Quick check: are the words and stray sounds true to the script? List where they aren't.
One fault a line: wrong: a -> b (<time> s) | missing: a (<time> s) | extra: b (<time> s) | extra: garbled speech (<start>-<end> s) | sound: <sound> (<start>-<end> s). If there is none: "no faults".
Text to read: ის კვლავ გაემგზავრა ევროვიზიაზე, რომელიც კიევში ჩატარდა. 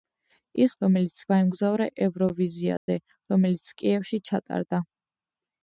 wrong: კვლავ -> რომელიც (0.8 s)
sound: dropout (2.8-2.9 s)